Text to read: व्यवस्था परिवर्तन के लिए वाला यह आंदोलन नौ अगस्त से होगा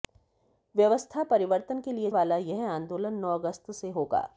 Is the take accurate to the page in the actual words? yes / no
yes